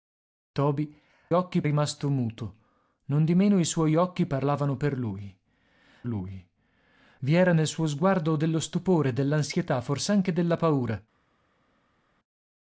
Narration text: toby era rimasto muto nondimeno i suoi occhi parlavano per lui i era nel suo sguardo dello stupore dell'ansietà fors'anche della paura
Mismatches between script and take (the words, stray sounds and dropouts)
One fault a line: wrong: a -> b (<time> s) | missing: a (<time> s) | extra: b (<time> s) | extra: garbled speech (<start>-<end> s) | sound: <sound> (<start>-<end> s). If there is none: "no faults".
wrong: era -> occhi (1.3 s)
extra: lui (6.1 s)